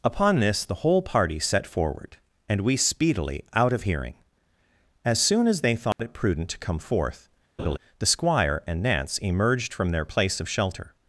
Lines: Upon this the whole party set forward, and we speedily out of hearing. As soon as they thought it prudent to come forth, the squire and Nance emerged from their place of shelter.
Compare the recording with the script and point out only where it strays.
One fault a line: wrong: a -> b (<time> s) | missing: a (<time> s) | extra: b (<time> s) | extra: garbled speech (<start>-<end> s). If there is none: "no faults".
no faults